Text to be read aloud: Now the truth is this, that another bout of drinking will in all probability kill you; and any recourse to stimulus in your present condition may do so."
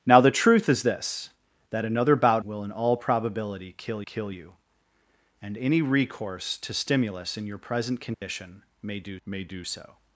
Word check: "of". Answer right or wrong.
wrong